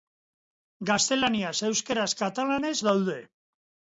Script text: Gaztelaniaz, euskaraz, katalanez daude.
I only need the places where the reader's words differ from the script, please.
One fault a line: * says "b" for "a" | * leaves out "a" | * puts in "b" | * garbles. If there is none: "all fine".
all fine